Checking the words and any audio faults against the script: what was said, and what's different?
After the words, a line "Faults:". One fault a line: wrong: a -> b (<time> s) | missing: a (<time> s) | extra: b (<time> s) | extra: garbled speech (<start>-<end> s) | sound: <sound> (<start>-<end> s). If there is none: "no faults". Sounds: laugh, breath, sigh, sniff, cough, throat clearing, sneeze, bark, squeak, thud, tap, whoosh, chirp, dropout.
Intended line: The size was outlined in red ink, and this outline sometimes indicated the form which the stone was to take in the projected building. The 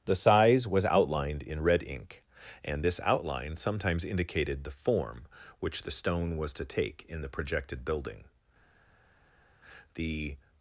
The size was outlined in red ink, and this outline sometimes indicated the form which the stone was to take in the projected building. The
Faults:
no faults